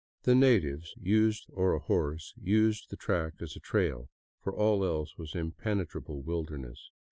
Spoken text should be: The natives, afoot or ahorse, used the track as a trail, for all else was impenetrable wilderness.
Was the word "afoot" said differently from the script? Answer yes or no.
yes